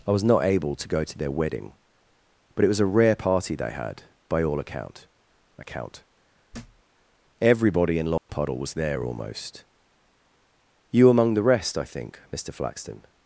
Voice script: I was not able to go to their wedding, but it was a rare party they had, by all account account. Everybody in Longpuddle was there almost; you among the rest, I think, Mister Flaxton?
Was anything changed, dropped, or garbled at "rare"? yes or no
no